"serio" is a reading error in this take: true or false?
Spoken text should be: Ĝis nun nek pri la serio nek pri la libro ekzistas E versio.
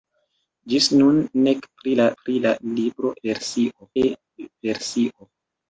true